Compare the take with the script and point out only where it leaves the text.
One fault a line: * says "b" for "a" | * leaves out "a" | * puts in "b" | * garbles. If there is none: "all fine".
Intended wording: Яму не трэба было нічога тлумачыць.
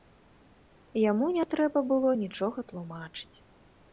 all fine